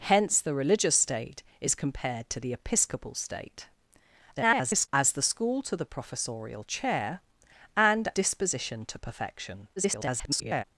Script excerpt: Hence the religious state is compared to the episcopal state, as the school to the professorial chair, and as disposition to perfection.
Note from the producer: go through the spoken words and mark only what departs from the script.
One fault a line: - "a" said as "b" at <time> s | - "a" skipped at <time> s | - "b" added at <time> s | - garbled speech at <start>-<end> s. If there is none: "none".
- garbled speech at 4.4-4.9 s
- "as" skipped at 8.1 s
- garbled speech at 9.8-10.6 s